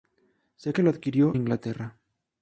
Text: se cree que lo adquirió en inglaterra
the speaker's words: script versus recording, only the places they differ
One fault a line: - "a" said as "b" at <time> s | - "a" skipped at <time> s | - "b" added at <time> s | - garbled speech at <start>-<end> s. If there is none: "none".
- "cree" skipped at 0.7 s
- "en" skipped at 1.4 s